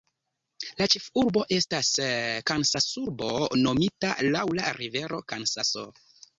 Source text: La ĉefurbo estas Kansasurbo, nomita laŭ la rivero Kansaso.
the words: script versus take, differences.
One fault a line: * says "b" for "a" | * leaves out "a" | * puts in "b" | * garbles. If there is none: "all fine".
all fine